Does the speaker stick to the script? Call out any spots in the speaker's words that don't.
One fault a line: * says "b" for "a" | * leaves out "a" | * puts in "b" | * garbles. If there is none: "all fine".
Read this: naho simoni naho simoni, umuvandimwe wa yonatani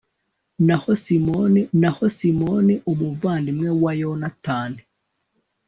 all fine